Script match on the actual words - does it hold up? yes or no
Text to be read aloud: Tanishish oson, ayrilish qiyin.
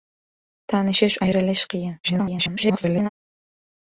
no